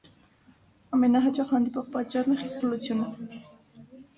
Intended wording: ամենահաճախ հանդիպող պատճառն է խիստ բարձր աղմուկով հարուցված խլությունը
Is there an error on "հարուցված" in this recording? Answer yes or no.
yes